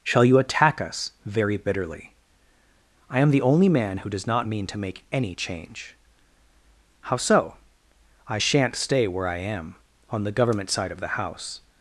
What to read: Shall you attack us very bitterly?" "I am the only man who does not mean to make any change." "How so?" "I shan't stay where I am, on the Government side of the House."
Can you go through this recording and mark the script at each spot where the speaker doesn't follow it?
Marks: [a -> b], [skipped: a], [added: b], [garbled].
Shall you attack us very bitterly?" "I am the only man who does not mean to make any change." "How so?" "I shan't stay where I am, on the Government side of the House."